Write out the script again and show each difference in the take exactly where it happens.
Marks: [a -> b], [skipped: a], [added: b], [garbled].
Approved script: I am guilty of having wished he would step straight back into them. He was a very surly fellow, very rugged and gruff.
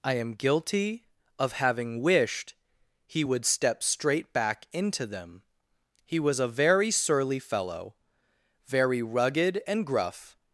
I am guilty of having wished he would step straight back into them. He was a very surly fellow, very rugged and gruff.